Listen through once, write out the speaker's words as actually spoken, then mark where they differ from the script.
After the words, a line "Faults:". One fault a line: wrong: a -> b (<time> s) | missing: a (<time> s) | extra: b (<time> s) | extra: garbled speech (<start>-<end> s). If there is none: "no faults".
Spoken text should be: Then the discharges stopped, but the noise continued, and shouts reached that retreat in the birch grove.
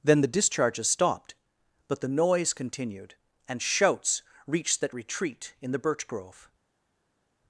Then the discharges stopped, but the noise continued, and shouts reached that retreat in the birch grove.
Faults:
no faults